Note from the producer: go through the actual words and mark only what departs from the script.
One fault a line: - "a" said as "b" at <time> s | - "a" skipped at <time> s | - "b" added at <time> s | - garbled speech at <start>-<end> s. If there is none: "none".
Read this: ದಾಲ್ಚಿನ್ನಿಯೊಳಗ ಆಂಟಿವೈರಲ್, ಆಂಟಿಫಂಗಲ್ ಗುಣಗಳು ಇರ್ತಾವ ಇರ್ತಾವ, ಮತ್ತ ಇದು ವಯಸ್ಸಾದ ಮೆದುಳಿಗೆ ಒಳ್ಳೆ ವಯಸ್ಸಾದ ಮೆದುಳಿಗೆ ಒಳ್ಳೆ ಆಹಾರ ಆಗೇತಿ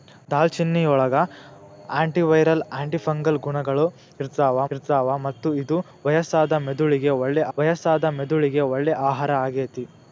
none